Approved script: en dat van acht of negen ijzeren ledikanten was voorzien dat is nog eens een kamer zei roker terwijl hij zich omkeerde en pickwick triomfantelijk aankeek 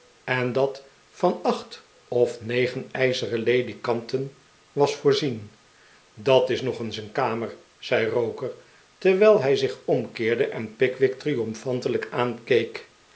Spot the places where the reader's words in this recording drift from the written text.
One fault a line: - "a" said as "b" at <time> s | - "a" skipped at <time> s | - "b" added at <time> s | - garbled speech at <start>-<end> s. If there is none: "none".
none